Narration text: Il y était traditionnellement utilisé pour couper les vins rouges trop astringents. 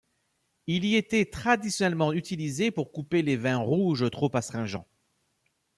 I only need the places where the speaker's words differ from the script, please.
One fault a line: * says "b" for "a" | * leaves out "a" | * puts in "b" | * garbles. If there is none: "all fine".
all fine